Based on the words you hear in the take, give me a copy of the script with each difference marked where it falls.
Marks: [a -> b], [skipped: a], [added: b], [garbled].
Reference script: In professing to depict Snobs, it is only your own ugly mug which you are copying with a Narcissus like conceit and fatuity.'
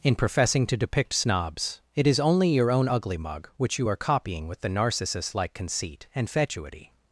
In professing to depict Snobs, it is only your own ugly mug which you are copying with [a -> the] Narcissus like conceit and fatuity.'